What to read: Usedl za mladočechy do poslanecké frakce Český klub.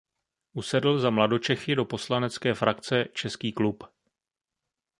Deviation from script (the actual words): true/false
false